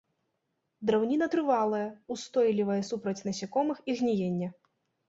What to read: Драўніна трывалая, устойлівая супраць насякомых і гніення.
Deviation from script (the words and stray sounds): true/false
false